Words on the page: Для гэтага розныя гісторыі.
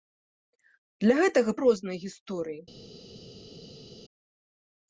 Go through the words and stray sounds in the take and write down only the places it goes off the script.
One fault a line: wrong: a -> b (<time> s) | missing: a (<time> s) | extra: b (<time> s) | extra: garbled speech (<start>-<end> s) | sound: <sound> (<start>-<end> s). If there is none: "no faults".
no faults